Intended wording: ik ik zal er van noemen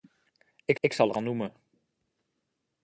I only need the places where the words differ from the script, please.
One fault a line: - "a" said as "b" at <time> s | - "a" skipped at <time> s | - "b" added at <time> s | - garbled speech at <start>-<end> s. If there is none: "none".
none